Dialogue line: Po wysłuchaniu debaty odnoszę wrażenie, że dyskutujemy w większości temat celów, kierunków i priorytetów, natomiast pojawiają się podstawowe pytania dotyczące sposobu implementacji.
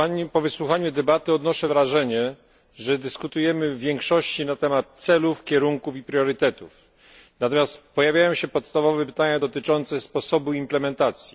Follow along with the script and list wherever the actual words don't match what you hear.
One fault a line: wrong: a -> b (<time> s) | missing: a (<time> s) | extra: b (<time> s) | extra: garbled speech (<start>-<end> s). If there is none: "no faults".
extra: na (4.5 s)